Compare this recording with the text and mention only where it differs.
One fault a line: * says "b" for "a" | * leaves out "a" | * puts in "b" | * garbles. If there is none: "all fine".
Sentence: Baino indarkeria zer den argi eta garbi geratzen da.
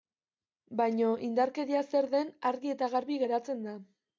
all fine